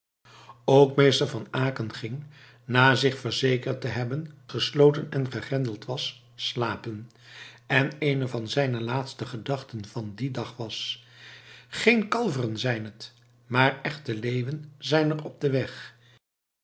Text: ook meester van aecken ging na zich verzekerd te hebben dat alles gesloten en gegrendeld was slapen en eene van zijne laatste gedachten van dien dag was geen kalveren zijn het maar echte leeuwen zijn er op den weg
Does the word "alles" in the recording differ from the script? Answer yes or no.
yes